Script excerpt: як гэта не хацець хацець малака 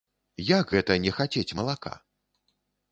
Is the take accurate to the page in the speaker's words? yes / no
no